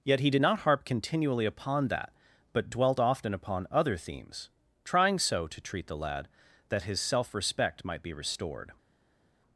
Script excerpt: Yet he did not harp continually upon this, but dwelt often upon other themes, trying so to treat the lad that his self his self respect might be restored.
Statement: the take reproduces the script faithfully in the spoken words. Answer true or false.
false